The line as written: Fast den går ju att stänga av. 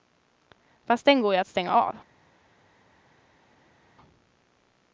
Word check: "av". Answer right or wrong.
right